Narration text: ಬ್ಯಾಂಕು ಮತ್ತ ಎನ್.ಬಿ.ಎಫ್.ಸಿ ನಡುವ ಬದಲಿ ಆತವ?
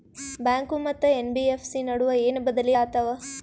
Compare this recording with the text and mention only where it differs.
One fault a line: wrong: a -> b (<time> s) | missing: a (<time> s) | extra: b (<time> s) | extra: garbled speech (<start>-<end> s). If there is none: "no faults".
extra: ಏನ (2.2 s)